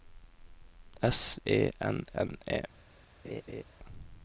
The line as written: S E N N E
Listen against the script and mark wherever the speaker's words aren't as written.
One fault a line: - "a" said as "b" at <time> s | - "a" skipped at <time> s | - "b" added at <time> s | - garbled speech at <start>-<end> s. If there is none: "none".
none